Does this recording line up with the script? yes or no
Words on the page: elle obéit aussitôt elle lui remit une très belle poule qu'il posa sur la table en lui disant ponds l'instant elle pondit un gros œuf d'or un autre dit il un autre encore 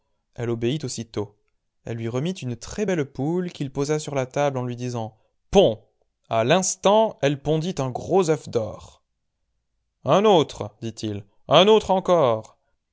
no